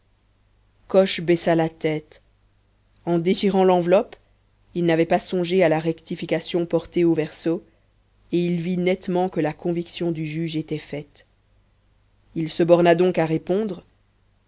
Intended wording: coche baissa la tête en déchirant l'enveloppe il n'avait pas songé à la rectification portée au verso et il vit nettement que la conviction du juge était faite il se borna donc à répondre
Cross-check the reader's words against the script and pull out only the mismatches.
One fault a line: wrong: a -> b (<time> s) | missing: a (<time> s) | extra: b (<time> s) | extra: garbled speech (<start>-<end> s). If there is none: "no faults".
no faults